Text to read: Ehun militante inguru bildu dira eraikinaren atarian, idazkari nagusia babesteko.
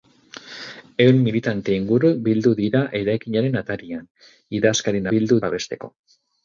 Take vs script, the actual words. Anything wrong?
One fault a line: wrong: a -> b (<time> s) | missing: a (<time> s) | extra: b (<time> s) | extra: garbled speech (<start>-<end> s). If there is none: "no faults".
wrong: nagusia -> bildu (5.1 s)